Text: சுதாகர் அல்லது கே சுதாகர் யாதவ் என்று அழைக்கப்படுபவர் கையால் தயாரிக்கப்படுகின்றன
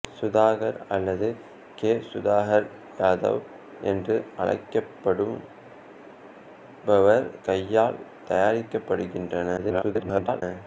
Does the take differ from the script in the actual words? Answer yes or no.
yes